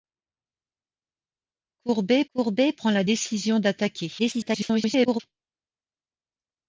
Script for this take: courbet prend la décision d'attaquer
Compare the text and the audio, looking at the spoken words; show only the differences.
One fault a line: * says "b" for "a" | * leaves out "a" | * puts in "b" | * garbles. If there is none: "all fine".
* puts in "courbet"
* garbles